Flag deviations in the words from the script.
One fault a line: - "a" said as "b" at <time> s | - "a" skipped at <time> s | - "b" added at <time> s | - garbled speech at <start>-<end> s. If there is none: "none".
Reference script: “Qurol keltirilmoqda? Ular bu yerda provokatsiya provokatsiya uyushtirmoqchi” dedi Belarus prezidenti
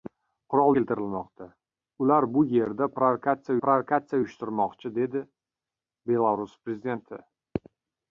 none